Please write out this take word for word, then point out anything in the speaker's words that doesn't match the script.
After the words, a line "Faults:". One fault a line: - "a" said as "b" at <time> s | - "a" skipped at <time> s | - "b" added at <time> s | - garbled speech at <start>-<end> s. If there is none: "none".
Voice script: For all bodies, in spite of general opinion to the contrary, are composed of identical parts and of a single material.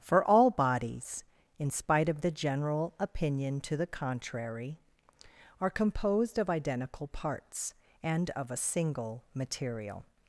For all bodies, in spite of the general opinion to the contrary, are composed of identical parts and of a single material.
Faults:
- "the" added at 2.2 s